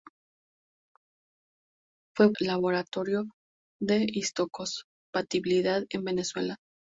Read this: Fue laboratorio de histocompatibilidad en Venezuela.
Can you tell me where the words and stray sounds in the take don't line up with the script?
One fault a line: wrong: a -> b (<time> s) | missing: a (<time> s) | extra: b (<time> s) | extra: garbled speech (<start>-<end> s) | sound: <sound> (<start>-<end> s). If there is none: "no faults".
no faults